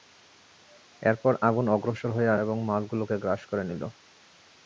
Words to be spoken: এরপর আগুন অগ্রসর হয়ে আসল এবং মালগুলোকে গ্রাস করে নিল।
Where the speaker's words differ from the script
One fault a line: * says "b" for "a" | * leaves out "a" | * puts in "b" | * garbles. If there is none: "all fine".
* leaves out "আসল"